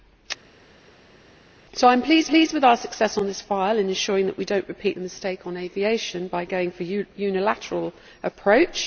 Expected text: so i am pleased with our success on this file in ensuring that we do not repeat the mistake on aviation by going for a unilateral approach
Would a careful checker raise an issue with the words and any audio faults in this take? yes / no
yes